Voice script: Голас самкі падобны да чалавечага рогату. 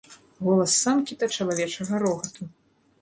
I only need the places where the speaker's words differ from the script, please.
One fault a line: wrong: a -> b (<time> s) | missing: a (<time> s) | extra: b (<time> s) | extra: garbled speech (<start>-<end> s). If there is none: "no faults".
missing: падобны (1.2 s)